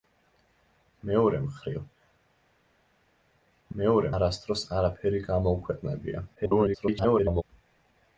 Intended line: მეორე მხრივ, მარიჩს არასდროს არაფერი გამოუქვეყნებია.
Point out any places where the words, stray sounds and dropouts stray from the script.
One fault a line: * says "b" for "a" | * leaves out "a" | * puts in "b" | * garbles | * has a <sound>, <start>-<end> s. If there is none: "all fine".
* says "მეორე" for "მარიჩს"
* garbles